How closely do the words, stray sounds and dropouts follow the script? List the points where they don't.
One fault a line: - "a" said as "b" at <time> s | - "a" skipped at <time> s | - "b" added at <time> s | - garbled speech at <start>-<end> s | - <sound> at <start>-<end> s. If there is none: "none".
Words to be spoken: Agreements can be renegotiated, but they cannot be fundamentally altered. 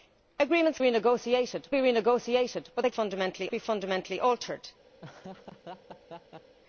- "can" said as "renegotiated" at 0.8 s
- "cannot" said as "fundamentally" at 2.9 s
- laugh at 5.0-6.6 s